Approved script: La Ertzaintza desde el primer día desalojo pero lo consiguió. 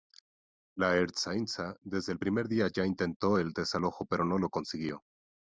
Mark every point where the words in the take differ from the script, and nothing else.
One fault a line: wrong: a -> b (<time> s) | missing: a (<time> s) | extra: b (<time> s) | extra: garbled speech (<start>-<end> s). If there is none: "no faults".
extra: ya intentó el (2.7 s)
extra: no (4.2 s)